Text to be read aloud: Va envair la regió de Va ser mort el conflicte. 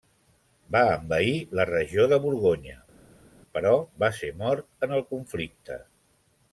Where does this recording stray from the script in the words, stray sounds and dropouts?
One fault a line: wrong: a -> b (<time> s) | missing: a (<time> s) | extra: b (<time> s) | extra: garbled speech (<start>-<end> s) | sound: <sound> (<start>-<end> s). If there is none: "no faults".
extra: Borgonya però (2.2 s)
extra: en (4.9 s)